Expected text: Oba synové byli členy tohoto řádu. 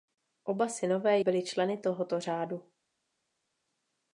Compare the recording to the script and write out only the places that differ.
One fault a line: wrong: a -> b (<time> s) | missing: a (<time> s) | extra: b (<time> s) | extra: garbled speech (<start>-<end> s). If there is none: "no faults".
no faults